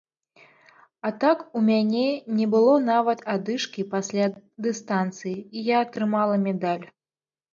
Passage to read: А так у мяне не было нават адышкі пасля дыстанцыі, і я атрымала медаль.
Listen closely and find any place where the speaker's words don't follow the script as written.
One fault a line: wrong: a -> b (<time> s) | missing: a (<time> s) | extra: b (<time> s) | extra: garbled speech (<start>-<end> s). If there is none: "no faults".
no faults